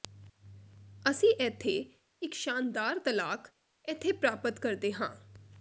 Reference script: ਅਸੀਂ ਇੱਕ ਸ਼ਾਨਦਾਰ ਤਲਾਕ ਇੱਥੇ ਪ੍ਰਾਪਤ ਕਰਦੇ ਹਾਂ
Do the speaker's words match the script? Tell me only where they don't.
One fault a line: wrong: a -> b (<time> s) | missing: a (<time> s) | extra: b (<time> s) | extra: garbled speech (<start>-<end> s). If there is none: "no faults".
extra: ਇੱਥੇ (1.4 s)